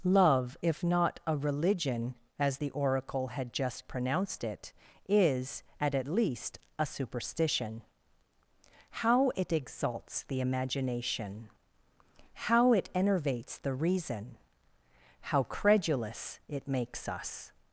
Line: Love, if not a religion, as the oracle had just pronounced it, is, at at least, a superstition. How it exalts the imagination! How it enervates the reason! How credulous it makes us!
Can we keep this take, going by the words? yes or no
yes